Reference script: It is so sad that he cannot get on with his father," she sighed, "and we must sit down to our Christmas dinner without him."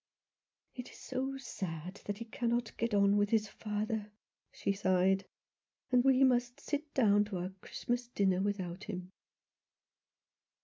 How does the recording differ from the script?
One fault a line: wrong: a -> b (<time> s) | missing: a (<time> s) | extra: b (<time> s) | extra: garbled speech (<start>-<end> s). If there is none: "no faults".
no faults